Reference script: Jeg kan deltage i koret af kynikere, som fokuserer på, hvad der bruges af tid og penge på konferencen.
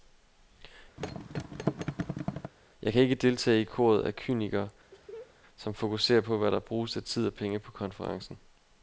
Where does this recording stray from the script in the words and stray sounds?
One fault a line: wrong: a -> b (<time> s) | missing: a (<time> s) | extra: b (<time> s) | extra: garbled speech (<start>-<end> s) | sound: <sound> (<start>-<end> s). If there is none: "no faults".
sound: thud (1.0-2.5 s)
extra: ikke (3.0 s)
sound: laugh (4.9-5.4 s)